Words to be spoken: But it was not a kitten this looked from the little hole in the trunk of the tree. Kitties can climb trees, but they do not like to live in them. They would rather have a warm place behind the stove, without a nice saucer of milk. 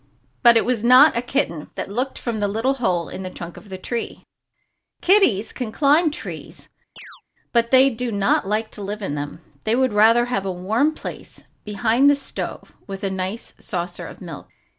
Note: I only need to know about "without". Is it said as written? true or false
false